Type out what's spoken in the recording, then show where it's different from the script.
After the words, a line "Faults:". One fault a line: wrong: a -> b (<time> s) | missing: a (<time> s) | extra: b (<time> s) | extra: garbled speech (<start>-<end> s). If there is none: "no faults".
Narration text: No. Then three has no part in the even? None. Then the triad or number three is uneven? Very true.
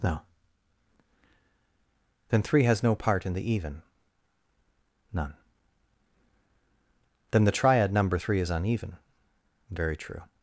No. Then three has no part in the even? None. Then the triad number three is uneven? Very true.
Faults:
missing: or (7.9 s)